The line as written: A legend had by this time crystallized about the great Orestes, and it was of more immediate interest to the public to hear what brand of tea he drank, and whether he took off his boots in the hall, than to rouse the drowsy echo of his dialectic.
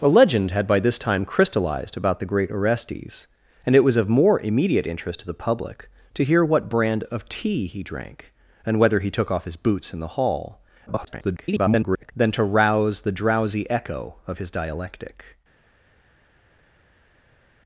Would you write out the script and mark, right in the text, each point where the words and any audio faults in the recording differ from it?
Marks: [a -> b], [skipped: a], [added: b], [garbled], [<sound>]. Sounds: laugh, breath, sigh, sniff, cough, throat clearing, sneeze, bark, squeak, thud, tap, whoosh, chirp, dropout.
A legend had by this time crystallized about the great Orestes, and it was of more immediate interest to the public to hear what brand of tea he drank, and whether he took off his boots in the hall, [garbled] than to rouse the drowsy echo of his dialectic.